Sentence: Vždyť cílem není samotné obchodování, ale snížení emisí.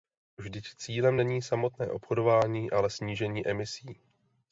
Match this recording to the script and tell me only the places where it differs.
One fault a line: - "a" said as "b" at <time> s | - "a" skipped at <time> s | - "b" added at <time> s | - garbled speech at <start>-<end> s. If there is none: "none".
none